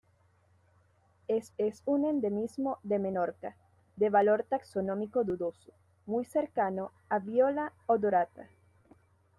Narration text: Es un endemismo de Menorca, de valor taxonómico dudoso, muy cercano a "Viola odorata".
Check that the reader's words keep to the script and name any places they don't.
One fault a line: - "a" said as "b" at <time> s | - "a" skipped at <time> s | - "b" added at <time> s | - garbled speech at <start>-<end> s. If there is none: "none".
- "es" added at 1.6 s